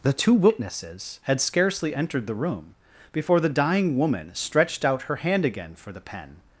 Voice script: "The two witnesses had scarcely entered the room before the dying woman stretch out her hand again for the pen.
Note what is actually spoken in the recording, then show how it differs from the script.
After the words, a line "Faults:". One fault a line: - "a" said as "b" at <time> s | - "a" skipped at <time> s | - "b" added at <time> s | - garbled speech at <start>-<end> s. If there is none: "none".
"The two witnesses had scarcely entered the room before the dying woman stretched out her hand again for the pen.
Faults:
- "stretch" said as "stretched" at 4.3 s